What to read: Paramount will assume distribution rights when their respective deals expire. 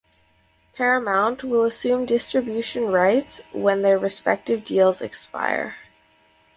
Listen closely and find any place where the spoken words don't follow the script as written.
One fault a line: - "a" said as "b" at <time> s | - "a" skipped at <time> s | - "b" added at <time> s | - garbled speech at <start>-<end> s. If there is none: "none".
none